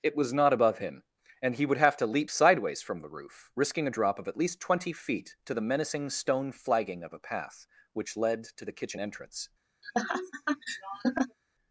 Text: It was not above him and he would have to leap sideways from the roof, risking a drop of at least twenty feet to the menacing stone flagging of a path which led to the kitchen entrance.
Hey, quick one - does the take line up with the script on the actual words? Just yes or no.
yes